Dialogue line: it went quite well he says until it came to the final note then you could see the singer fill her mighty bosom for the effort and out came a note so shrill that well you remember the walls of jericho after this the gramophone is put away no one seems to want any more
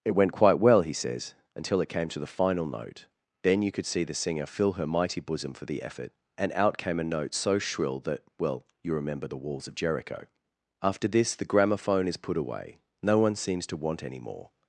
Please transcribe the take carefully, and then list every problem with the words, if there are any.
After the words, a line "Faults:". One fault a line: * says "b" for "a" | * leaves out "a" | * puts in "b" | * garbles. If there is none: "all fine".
it went quite well he says until it came to the final note then you could see the singer fill her mighty bosom for the effort and out came a note so shrill that well you remember the walls of jericho after this the gramophone is put away no one seems to want any more
Faults:
all fine